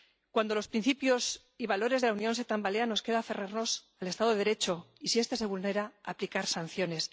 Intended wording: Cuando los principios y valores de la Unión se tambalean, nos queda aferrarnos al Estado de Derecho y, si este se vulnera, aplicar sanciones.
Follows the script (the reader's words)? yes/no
yes